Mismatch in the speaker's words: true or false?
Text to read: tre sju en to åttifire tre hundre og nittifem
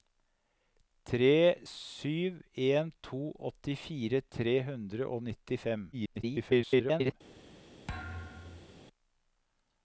true